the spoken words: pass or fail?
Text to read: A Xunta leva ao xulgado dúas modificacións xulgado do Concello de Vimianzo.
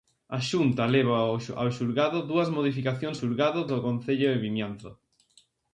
pass